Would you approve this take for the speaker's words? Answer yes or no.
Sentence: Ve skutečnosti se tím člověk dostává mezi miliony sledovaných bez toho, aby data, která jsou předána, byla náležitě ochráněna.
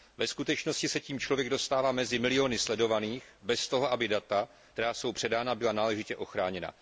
yes